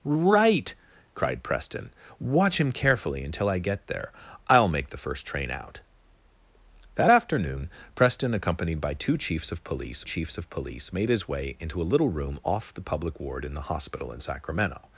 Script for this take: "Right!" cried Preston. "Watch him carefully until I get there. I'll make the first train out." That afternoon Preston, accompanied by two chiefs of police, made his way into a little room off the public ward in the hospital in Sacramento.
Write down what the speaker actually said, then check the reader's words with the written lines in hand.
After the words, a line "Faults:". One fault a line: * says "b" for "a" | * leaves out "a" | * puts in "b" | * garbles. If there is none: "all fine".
"Right!" cried Preston. "Watch him carefully until I get there. I'll make the first train out." That afternoon Preston, accompanied by two chiefs of police chiefs of police, made his way into a little room off the public ward in the hospital in Sacramento.
Faults:
* puts in "chiefs of police"